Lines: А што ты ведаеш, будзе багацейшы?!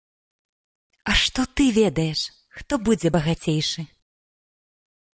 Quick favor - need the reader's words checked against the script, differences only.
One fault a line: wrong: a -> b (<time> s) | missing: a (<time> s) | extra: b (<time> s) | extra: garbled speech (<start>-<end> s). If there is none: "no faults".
extra: хто (2.6 s)